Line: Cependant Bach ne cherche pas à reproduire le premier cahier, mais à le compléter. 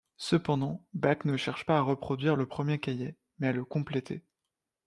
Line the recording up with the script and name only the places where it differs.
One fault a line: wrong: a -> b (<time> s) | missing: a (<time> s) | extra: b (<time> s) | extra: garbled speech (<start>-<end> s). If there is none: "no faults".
no faults